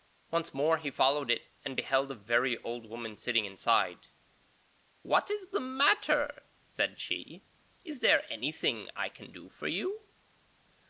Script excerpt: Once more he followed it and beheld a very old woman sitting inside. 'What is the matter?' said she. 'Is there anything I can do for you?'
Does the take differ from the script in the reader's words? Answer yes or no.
no